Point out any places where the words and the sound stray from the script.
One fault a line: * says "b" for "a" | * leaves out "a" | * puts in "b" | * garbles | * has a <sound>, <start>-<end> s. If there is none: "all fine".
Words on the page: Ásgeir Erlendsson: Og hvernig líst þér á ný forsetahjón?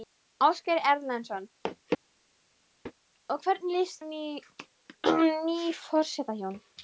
* leaves out "þér"